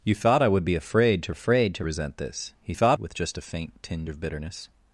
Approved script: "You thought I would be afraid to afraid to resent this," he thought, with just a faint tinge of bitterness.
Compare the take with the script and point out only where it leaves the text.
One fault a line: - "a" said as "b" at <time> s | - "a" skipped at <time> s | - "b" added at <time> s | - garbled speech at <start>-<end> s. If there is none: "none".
none